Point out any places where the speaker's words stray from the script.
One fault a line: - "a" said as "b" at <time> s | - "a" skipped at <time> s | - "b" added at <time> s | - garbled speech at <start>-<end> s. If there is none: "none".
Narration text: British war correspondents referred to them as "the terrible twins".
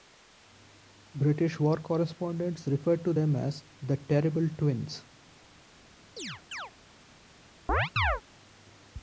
none